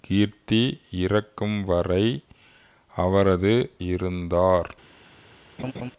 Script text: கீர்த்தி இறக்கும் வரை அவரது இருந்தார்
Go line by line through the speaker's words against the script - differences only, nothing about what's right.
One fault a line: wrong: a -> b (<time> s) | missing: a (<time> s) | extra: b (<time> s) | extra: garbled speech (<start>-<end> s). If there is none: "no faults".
no faults